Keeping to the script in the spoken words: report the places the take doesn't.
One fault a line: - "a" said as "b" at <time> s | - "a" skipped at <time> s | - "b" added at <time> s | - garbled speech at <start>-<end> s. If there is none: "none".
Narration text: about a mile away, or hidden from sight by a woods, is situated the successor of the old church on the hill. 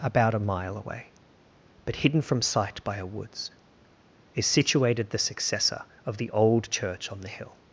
- "or" said as "but" at 1.9 s